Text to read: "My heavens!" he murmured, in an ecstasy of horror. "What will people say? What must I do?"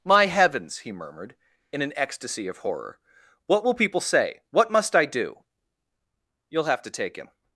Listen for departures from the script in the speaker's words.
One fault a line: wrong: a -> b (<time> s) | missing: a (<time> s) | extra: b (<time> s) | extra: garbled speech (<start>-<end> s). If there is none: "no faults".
extra: You'll have to take him (6.5 s)